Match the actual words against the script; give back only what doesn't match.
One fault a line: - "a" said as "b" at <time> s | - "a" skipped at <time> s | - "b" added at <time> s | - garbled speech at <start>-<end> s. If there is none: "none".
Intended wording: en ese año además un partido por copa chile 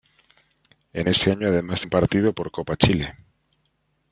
none